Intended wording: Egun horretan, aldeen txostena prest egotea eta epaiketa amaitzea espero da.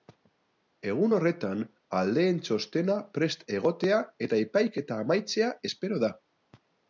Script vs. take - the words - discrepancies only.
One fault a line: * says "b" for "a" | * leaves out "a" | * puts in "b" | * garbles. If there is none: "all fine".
all fine